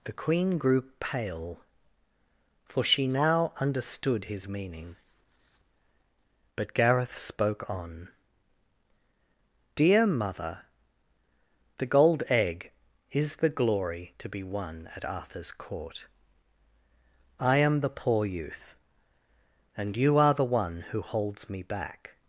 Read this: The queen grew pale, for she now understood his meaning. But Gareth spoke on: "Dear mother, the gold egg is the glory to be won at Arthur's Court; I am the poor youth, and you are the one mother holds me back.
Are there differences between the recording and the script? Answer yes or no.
yes